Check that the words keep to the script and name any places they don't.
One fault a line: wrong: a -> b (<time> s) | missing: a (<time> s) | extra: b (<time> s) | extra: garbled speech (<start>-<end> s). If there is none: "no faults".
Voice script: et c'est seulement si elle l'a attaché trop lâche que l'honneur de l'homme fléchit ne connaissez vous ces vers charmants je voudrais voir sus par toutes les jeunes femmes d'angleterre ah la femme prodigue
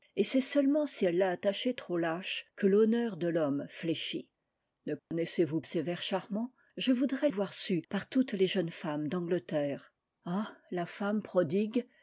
no faults